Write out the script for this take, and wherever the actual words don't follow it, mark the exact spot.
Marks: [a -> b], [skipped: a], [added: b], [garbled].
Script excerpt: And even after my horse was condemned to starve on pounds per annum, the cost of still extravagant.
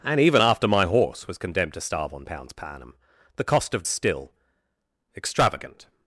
And even after my horse was condemned to starve on pounds per annum, the cost of still extravagant.